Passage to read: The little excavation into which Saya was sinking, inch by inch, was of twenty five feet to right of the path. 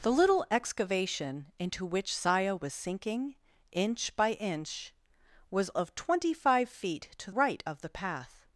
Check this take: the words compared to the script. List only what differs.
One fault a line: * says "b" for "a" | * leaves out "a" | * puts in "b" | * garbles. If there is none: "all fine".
all fine